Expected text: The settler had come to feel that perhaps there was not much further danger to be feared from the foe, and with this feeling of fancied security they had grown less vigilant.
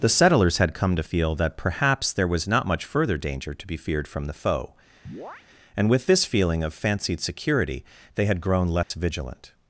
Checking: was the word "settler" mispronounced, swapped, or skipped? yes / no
yes